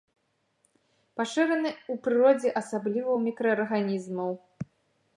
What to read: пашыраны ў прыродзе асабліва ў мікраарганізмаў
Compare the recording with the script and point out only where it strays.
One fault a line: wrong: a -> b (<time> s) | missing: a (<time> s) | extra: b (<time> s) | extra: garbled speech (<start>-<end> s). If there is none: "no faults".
no faults